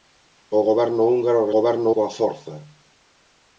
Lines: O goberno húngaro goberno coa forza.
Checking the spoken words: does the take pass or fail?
pass